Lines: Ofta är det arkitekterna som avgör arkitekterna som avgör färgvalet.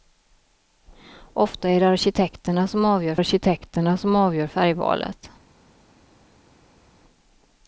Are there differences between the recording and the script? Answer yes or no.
no